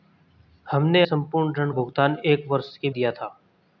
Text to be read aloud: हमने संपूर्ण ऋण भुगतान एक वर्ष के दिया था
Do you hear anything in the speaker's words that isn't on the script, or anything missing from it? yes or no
no